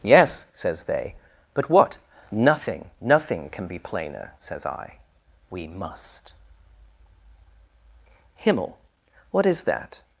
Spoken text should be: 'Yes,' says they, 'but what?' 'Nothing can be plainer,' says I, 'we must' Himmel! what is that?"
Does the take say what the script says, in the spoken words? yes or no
no